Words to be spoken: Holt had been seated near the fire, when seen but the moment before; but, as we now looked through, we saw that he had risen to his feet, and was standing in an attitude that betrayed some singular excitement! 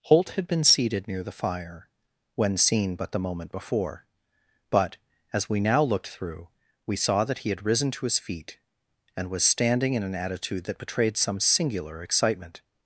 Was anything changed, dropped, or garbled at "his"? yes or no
no